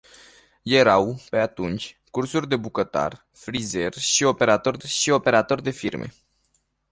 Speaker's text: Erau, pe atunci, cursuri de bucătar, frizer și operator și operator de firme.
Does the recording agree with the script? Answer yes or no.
yes